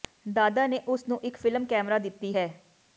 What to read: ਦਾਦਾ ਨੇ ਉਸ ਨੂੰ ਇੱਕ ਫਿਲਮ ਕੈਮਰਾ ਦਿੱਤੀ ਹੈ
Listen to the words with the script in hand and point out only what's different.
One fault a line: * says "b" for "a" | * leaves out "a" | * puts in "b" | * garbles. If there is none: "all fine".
all fine